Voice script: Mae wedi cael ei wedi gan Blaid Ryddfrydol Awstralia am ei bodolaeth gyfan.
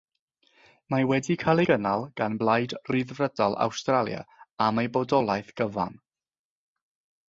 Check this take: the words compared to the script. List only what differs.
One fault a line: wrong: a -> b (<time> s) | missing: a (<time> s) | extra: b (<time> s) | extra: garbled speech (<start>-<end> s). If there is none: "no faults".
wrong: wedi -> gynnal (1.7 s)